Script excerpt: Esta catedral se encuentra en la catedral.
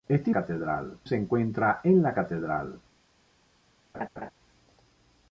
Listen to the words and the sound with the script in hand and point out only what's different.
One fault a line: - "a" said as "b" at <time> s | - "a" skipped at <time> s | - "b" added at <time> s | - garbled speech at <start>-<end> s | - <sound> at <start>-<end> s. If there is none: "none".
- laugh at 3.9-4.3 s